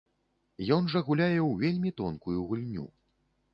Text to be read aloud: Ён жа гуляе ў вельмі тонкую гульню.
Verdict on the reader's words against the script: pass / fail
pass